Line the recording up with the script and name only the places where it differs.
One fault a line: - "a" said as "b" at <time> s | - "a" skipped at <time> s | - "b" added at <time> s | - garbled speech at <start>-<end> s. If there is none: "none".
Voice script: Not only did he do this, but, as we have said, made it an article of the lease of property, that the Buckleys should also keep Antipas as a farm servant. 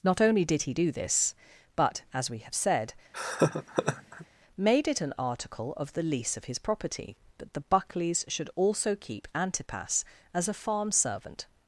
- "his" added at 6.5 s